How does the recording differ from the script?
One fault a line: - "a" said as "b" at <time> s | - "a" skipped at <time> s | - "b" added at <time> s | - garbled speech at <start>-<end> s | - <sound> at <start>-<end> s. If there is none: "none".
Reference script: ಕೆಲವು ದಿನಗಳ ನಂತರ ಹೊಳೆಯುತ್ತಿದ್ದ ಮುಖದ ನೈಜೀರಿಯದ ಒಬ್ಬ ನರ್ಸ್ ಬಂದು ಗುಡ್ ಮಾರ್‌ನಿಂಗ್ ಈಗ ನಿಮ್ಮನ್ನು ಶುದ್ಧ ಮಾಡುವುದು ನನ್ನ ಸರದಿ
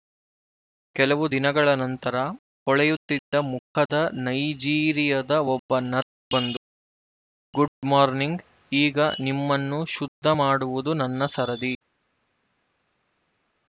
none